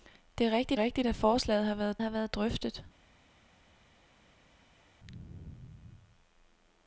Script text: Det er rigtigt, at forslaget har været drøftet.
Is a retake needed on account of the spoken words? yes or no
yes